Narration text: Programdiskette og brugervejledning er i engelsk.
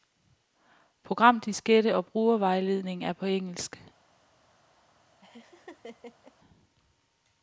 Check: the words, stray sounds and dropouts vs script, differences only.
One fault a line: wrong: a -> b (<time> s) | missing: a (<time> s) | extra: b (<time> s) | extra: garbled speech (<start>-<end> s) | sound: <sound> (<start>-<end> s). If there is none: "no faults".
wrong: i -> på (3.1 s)
sound: laugh (5.2-6.3 s)